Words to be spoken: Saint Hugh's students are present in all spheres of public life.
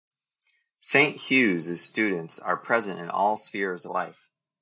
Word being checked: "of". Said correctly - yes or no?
no